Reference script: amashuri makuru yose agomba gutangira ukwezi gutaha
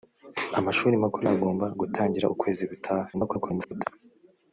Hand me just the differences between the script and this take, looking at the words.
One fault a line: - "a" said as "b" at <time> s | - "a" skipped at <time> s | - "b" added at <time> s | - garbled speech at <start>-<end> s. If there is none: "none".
- "yose" skipped at 1.2 s
- garbled speech at 3.1-3.9 s